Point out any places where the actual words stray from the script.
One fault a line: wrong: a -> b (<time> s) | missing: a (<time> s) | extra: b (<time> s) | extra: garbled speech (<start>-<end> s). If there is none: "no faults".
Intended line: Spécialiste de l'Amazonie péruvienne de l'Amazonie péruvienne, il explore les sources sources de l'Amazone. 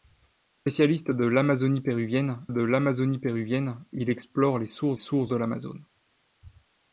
no faults